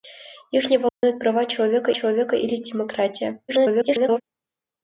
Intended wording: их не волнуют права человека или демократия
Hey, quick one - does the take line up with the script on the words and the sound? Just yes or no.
no